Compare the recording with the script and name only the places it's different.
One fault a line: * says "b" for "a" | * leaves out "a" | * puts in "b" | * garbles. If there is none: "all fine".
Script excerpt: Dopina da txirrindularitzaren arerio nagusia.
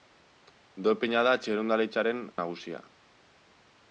* leaves out "arerio"